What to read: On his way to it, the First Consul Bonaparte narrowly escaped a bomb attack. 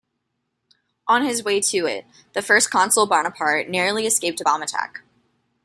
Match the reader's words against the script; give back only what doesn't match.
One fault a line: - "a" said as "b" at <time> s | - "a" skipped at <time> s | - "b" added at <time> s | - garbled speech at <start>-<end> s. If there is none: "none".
none